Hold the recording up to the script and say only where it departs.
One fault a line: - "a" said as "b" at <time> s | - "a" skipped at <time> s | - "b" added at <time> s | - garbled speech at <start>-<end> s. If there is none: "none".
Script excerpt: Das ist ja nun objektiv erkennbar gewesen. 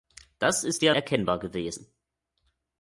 - "nun objektiv" skipped at 0.9 s